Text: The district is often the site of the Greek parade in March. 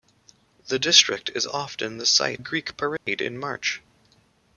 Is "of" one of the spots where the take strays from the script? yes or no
yes